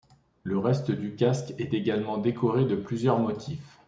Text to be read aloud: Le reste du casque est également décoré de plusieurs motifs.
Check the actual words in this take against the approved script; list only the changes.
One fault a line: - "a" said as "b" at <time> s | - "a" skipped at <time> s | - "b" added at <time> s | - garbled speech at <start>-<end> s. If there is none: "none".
none